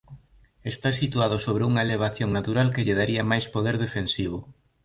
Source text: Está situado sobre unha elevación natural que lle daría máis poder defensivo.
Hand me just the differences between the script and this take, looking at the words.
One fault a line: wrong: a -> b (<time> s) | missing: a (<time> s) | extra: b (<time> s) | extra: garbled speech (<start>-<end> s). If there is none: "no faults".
no faults